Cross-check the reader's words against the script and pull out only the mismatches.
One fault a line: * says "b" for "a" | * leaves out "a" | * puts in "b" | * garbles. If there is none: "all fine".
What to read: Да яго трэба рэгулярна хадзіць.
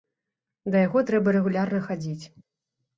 all fine